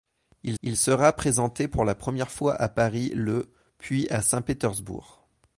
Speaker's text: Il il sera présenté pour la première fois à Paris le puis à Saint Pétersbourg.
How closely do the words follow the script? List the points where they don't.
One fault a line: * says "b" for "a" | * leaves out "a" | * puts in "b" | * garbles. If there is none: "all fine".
all fine